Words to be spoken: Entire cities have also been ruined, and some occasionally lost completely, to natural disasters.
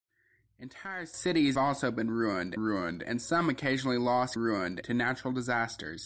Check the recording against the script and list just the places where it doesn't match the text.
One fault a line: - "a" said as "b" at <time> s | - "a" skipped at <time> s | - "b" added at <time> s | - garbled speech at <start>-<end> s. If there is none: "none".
- "have" skipped at 1.6 s
- "ruined" added at 2.5 s
- "completely" said as "ruined" at 4.3 s